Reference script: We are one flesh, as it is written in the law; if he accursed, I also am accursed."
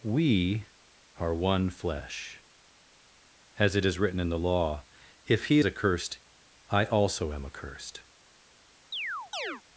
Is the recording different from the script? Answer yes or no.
no